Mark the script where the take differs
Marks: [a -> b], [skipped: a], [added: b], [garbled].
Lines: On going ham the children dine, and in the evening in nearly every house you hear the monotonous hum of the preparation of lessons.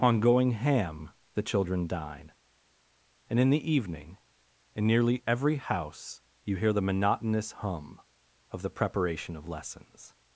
On going ham the children dine, and in the evening in nearly every house you hear the monotonous hum of the preparation of lessons.